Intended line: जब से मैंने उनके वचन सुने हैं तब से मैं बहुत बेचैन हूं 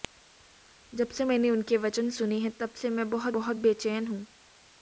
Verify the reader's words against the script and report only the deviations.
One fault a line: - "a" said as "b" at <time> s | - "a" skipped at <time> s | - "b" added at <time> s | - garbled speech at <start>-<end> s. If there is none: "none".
- "बहुत" added at 3.3 s